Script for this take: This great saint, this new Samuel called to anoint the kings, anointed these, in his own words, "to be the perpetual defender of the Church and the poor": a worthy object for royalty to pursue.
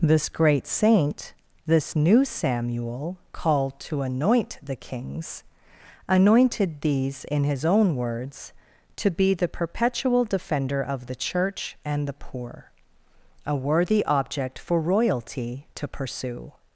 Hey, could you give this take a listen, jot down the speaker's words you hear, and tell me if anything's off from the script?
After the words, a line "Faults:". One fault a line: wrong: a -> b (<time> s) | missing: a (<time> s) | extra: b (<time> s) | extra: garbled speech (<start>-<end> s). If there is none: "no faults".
This great saint, this new Samuel called to anoint the kings, anointed these, in his own words, "to be the perpetual defender of the Church and the poor": a worthy object for royalty to pursue.
Faults:
no faults